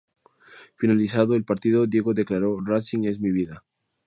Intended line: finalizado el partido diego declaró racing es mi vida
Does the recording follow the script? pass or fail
pass